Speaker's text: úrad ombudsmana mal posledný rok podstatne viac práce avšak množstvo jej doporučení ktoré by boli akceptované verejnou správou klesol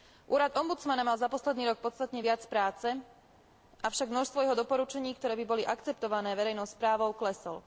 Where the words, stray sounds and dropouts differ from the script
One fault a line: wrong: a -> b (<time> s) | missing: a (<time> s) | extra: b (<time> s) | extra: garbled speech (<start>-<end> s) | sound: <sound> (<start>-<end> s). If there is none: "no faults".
extra: za (1.2 s)
wrong: jej -> jeho (4.4 s)